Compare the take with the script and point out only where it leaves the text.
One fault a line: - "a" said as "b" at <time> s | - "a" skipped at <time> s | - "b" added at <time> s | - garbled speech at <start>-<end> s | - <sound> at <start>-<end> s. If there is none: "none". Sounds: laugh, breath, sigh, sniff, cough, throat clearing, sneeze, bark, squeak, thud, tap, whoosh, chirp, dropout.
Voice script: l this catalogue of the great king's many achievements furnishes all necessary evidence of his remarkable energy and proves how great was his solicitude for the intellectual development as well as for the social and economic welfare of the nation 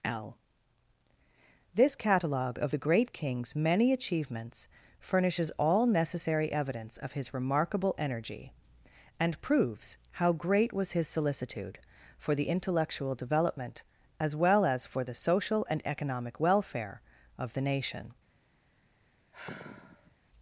- sigh at 19.3-20.2 s